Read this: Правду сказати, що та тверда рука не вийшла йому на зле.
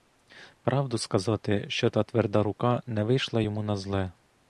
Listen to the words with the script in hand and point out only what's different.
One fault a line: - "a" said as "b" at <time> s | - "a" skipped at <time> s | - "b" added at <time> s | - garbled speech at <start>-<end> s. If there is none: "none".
none